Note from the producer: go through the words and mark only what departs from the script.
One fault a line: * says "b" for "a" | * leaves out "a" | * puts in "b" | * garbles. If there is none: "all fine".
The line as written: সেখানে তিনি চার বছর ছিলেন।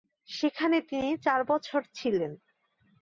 all fine